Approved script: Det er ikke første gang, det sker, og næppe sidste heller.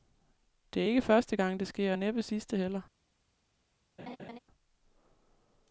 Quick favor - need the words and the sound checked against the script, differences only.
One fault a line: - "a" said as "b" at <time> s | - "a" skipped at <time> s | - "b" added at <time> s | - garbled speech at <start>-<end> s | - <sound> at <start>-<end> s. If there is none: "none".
- laugh at 4.0-4.4 s